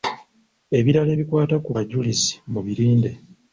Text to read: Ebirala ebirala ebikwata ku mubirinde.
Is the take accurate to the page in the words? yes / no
no